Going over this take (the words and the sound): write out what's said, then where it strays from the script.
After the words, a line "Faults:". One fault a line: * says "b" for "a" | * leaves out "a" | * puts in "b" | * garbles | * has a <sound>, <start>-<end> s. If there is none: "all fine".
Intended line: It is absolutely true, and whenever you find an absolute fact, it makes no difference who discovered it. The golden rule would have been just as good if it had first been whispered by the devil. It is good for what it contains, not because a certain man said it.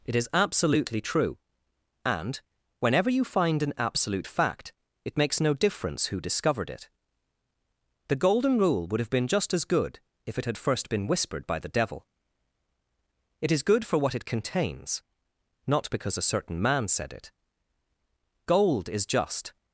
It is absolutely true, and whenever you find an absolute fact, it makes no difference who discovered it. The golden rule would have been just as good if it had first been whispered by the devil. It is good for what it contains, not because a certain man said it. Gold is just
Faults:
* puts in "Gold is just"